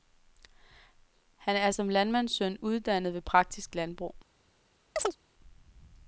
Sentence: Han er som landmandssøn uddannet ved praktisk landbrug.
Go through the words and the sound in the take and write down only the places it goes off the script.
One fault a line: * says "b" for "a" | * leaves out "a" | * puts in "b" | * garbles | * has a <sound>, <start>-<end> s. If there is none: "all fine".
* has a chirp, 5.0-5.2 s